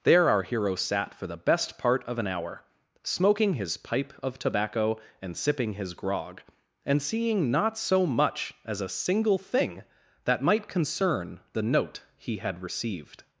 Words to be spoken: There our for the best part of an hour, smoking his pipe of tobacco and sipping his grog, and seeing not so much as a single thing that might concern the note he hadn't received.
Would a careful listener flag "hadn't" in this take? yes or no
yes